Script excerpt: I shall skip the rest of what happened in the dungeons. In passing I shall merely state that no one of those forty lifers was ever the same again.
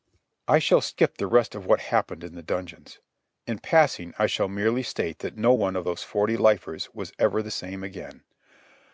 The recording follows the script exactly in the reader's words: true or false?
true